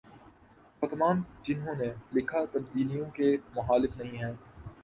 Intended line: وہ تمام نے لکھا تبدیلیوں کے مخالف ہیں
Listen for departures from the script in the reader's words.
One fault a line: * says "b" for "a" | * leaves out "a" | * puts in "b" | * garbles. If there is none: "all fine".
* puts in "جنہوں"
* puts in "نہیں"